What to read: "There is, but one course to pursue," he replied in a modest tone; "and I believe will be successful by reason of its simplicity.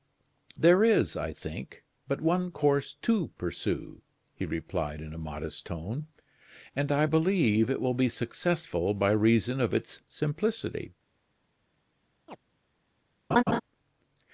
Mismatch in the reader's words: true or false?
true